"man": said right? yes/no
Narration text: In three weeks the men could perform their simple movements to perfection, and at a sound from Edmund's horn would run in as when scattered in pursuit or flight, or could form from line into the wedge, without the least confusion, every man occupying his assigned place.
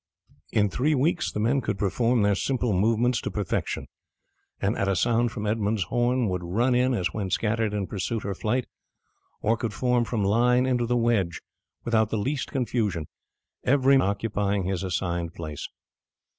no